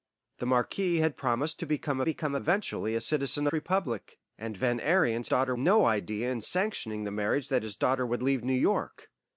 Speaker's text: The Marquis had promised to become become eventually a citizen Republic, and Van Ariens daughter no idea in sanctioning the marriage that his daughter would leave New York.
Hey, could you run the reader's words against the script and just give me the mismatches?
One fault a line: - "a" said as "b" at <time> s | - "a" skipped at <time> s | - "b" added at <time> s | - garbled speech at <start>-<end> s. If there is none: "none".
none